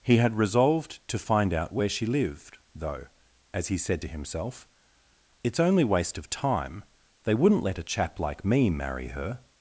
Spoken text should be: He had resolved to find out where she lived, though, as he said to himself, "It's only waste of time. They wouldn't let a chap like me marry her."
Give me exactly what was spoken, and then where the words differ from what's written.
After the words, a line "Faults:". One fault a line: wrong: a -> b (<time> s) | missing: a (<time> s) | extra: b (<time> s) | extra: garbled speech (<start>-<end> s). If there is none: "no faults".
He had resolved to find out where she lived, though, as he said to himself, "It's only waste of time. They wouldn't let a chap like me marry her."
Faults:
no faults